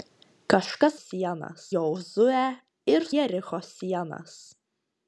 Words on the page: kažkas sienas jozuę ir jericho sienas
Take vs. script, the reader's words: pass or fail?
pass